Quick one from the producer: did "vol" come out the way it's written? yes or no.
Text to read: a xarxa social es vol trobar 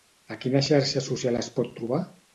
no